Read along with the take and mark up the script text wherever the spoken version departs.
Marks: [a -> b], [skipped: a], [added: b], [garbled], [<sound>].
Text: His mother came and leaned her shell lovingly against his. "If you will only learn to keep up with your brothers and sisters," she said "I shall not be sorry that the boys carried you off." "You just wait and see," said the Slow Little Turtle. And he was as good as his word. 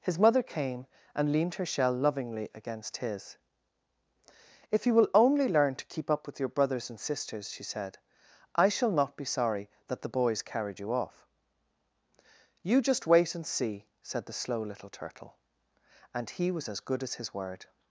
His mother came and leaned her shell lovingly against his. "If you will only learn to keep up with your brothers and sisters," she said "I shall not be sorry that the boys carried you off." "You just wait and see," said the Slow Little Turtle. And he was as good as his word.